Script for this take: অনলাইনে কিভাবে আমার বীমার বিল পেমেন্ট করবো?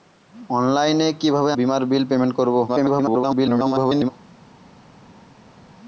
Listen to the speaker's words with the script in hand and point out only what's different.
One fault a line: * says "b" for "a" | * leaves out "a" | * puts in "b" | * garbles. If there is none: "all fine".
* leaves out "আমার"
* garbles